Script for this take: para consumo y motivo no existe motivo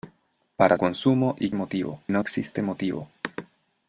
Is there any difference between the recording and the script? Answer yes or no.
no